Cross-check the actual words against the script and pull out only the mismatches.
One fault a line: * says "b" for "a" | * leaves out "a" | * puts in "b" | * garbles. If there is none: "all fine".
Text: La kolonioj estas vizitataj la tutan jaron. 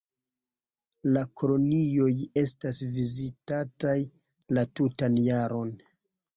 all fine